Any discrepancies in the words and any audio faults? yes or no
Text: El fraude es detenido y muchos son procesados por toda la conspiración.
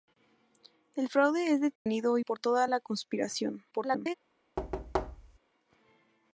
yes